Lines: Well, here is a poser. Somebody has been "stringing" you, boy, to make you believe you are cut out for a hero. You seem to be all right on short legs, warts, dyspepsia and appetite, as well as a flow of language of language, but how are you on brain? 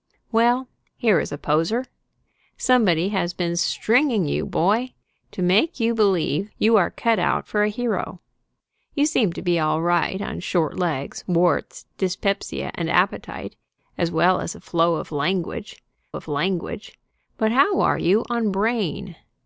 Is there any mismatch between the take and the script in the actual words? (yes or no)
no